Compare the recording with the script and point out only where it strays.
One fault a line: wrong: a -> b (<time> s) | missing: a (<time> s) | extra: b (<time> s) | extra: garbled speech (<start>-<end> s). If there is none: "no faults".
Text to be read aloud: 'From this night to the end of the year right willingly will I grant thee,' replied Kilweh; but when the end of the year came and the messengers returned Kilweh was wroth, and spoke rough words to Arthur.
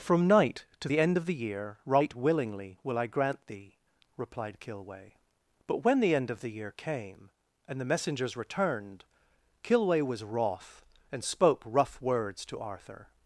missing: this (0.3 s)